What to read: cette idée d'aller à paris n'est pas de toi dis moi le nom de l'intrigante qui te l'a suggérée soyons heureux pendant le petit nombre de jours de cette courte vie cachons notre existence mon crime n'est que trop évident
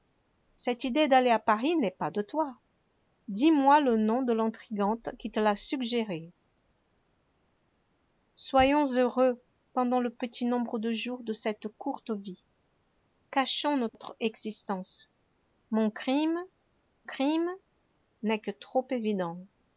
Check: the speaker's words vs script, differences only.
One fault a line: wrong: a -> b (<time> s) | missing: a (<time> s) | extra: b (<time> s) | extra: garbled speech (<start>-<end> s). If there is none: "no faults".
extra: crime (17.0 s)